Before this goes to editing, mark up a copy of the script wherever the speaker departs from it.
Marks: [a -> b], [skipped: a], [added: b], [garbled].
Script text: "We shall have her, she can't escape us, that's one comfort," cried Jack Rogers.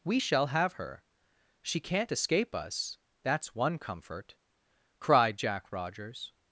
"We shall have her, she can't escape us, that's one comfort," cried Jack Rogers.